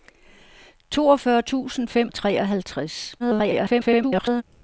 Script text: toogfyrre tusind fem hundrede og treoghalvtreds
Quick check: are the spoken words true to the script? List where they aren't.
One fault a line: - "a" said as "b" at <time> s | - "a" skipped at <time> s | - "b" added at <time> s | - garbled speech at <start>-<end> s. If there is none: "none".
- "hundrede" skipped at 2.1 s
- garbled speech at 3.2-4.4 s